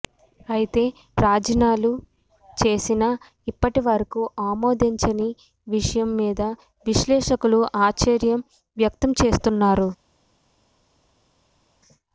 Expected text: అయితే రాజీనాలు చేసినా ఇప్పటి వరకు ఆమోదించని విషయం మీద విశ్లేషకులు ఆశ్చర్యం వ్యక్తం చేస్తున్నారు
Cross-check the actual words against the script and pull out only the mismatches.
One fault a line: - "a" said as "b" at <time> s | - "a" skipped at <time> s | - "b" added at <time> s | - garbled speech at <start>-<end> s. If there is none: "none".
none